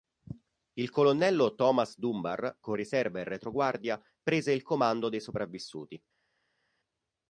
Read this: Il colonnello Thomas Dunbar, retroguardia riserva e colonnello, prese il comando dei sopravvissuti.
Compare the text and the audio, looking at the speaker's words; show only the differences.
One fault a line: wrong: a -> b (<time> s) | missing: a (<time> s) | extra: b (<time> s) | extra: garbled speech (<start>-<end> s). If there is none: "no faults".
wrong: retroguardia -> con (2.6 s)
wrong: colonnello -> retroguardia (3.2 s)